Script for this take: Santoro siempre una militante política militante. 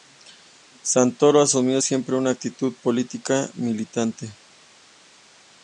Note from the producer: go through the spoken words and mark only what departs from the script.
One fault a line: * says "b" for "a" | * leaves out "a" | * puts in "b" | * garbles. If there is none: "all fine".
* puts in "asumió"
* says "actitud" for "militante"